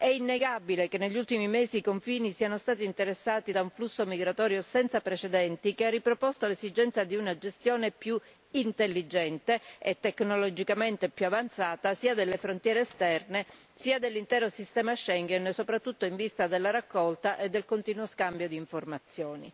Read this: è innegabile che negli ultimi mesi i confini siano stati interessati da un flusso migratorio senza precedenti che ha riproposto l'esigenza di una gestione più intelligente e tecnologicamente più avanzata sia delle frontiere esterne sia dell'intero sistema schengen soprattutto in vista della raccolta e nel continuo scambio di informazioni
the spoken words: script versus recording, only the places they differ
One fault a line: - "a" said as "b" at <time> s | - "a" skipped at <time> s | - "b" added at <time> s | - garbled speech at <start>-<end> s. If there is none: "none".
- "nel" said as "del" at 17.5 s